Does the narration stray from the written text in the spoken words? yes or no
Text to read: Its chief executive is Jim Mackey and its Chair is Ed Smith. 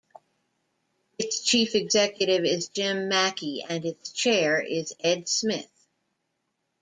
no